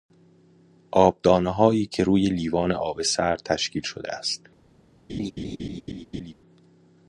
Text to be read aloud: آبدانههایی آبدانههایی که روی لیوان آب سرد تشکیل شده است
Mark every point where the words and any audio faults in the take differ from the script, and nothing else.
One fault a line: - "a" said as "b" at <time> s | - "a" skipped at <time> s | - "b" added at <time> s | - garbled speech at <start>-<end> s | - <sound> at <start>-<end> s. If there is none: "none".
- "آبدانههایی" skipped at 1.9 s
- laugh at 5.1-6.3 s